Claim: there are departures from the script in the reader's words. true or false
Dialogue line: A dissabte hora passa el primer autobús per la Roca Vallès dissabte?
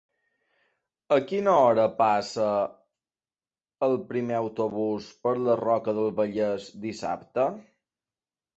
true